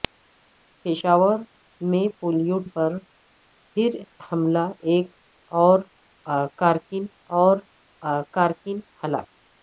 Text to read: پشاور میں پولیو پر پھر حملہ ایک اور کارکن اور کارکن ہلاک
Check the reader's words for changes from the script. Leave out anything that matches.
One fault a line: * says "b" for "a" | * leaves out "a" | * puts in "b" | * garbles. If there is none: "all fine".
all fine